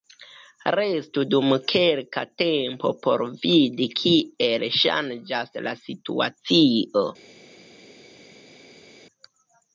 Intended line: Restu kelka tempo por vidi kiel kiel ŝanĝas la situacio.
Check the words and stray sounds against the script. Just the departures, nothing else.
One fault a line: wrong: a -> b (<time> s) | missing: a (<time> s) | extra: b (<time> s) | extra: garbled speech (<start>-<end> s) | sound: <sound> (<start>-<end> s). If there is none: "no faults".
extra: dum (1.3 s)
missing: kiel (4.7 s)